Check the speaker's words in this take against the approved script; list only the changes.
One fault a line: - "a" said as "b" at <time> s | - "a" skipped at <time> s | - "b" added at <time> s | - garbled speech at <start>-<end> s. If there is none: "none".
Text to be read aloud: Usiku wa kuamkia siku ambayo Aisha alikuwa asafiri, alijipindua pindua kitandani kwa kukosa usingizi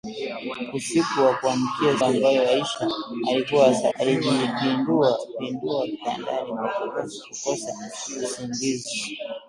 - "siku" skipped at 2.0 s
- "asafiri" skipped at 3.7 s